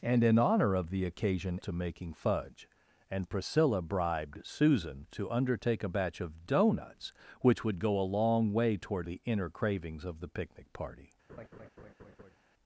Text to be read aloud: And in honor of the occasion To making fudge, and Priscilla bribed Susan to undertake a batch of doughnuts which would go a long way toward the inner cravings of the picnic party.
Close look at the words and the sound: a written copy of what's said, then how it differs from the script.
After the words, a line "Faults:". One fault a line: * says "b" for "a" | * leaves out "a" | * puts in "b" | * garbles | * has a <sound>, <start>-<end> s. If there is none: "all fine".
And in honor of the occasion To making fudge, and Priscilla bribed Susan to undertake a batch of doughnuts which would go a long way toward the inner cravings of the picnic party.
Faults:
* has a laugh, 11.3-12.4 s